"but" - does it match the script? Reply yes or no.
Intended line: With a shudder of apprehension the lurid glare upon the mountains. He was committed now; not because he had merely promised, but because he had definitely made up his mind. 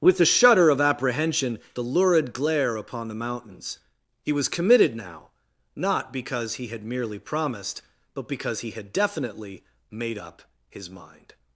yes